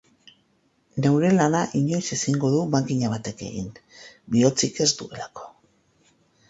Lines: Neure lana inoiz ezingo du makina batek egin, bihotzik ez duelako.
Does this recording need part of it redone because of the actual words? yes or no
no